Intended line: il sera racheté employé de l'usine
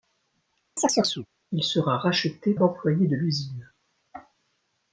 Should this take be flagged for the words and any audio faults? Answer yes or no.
yes